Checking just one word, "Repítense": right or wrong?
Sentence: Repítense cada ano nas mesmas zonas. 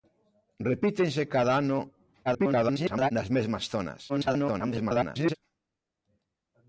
right